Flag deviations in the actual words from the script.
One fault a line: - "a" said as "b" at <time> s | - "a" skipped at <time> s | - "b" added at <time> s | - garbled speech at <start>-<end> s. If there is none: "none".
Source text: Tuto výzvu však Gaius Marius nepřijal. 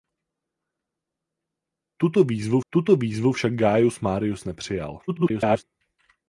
- "tuto výzvu" added at 2.7 s
- garbled speech at 5.1-5.6 s